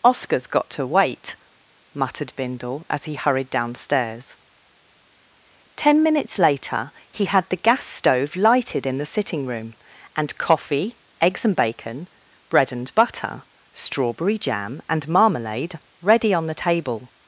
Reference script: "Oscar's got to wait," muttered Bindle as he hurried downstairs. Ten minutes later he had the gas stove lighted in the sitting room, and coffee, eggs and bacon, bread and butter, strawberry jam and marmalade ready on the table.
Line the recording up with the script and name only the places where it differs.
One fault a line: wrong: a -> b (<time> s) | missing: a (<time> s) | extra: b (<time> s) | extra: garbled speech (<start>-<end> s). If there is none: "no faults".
no faults